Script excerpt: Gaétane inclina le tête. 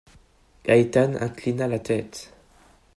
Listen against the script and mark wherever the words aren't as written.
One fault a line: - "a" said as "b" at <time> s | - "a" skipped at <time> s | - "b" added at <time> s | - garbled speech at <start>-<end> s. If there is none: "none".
- "le" said as "la" at 1.7 s